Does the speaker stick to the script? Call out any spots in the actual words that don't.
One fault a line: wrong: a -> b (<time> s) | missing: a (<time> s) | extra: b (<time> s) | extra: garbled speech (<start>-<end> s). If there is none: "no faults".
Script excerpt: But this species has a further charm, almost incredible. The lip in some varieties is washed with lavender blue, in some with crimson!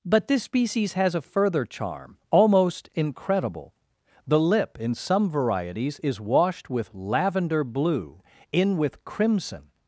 missing: some (8.8 s)